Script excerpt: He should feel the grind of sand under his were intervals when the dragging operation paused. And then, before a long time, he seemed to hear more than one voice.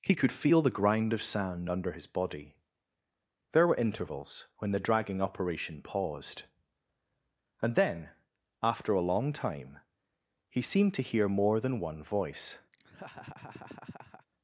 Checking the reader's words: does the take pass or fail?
fail